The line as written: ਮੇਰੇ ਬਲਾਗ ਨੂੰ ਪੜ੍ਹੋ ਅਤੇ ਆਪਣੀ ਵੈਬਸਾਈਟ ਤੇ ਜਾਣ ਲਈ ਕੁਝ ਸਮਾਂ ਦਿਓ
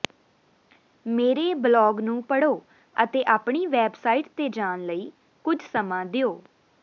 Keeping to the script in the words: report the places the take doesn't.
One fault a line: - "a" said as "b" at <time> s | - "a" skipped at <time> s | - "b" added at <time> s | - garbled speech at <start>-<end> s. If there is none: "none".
none